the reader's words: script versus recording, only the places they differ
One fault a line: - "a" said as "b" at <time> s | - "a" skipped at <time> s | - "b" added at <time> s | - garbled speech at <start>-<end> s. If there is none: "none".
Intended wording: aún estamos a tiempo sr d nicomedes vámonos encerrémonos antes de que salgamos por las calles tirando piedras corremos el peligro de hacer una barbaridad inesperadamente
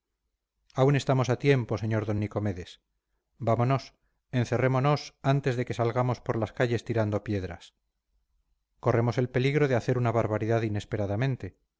none